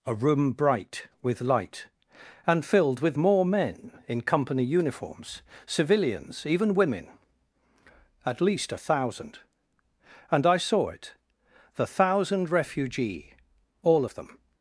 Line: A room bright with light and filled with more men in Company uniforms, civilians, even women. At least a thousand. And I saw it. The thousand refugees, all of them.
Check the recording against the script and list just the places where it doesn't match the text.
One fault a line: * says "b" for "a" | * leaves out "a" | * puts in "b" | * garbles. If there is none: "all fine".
* says "refugee" for "refugees"